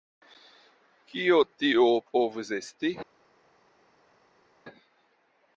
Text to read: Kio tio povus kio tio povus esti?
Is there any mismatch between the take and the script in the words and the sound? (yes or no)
yes